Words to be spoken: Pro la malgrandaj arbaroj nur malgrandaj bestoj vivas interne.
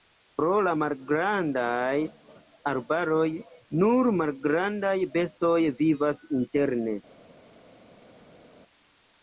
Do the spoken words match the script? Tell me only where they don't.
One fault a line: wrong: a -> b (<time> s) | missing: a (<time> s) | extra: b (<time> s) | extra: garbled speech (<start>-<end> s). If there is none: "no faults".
no faults